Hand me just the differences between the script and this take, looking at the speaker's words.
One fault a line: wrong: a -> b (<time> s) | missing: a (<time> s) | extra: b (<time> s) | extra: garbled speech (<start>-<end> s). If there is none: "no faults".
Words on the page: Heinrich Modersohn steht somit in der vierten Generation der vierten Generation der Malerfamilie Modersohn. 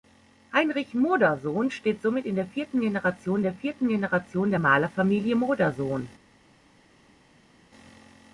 no faults